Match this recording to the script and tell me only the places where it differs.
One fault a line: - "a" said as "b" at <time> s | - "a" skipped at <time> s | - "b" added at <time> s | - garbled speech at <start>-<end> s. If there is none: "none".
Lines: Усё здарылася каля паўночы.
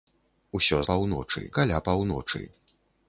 - "здарылася" said as "паўночы" at 0.9 s